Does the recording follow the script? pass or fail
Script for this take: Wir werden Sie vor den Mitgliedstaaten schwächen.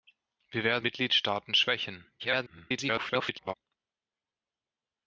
fail